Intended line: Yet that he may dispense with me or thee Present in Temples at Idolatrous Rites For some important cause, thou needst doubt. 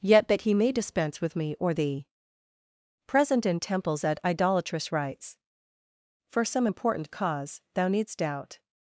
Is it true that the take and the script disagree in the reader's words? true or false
false